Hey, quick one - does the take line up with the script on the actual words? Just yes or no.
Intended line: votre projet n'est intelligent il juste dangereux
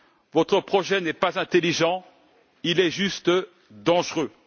no